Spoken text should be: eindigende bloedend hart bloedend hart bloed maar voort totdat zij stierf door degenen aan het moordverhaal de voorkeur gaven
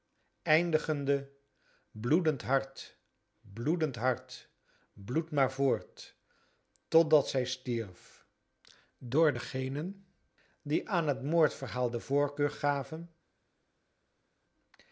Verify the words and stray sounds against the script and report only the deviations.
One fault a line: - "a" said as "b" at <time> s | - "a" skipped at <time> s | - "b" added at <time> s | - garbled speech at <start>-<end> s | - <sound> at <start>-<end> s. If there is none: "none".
- "die" added at 10.6 s